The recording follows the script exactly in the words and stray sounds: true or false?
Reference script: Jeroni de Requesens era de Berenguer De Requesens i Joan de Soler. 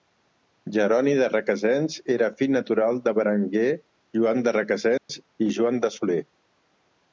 false